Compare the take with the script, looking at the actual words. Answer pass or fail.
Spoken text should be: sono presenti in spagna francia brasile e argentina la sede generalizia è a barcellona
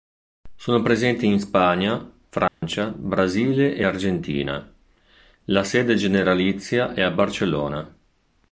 pass